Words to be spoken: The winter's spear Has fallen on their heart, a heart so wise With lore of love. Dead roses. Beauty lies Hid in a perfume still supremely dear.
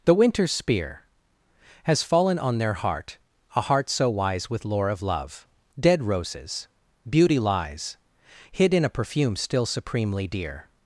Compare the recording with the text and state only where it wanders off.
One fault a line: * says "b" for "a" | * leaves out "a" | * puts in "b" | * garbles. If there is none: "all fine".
all fine